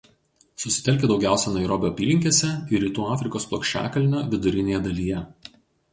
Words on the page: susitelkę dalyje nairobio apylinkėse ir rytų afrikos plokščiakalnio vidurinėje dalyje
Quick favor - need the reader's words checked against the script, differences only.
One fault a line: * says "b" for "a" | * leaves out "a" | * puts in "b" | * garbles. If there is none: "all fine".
* says "daugiausia" for "dalyje"